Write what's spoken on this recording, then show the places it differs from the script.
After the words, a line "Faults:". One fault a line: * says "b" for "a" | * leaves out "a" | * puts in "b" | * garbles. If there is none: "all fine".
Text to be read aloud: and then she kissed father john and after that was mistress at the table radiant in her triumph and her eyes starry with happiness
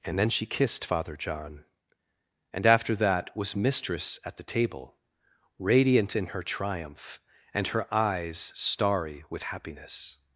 and then she kissed father john and after that was mistress at the table radiant in her triumph and her eyes starry with happiness
Faults:
all fine